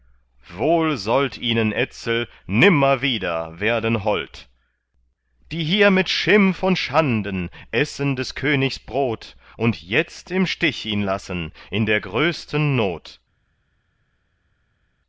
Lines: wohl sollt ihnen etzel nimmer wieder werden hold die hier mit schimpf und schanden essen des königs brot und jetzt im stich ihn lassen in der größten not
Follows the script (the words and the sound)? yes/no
yes